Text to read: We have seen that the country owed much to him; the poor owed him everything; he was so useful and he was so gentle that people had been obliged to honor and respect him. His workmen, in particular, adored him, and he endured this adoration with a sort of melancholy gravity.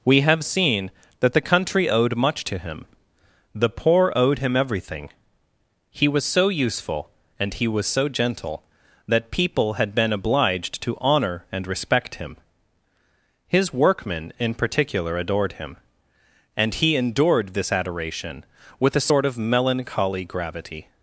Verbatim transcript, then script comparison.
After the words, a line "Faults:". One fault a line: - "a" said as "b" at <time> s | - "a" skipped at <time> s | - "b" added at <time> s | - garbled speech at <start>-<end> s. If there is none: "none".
We have seen that the country owed much to him; the poor owed him everything; he was so useful and he was so gentle that people had been obliged to honor and respect him. His workmen, in particular, adored him, and he endured this adoration with a sort of melancholy gravity.
Faults:
none